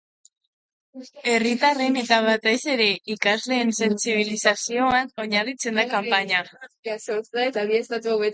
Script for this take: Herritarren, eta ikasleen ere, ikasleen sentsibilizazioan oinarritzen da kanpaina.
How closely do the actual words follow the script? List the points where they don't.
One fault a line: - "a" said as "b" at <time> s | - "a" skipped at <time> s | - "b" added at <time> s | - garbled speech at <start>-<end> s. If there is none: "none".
- "ikasleen" said as "batez" at 2.3 s